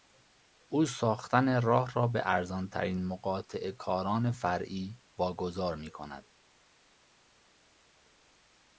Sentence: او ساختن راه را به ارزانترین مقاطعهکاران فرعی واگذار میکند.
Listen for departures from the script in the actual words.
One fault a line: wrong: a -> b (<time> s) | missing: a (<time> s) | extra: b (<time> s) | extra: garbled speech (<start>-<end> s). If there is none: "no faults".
no faults